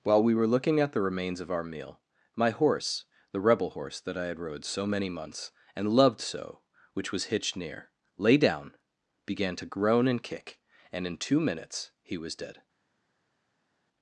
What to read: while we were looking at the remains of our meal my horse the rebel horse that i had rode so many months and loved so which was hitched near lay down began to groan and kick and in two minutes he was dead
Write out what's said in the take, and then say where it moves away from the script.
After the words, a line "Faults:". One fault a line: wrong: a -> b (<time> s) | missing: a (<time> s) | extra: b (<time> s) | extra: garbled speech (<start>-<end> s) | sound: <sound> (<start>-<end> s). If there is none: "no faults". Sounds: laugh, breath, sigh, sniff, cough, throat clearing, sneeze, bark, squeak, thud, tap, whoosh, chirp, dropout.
while we were looking at the remains of our meal my horse the rebel horse that i had rode so many months and loved so which was hitched near lay down began to groan and kick and in two minutes he was dead
Faults:
no faults